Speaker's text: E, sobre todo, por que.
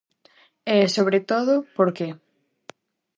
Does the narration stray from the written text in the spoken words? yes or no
no